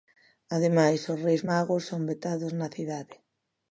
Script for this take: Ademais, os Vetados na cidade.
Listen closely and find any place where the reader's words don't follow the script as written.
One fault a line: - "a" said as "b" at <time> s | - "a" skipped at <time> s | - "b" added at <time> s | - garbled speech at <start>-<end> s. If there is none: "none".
- "Reis Magos son" added at 1.2 s